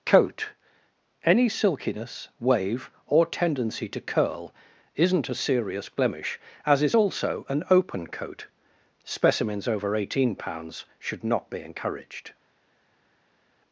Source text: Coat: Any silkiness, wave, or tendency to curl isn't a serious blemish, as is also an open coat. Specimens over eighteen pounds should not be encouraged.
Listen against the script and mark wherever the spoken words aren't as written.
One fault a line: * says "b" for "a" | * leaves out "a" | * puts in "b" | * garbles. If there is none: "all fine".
all fine